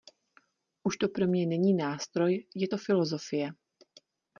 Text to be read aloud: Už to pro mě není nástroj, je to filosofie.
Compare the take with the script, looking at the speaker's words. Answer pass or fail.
pass